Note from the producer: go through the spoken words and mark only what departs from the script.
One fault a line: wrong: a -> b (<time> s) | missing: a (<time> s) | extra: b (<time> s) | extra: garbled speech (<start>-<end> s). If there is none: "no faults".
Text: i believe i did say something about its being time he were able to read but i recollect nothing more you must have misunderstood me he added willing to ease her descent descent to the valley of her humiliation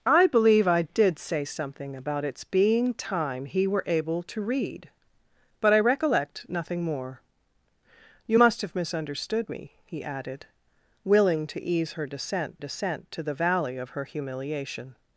no faults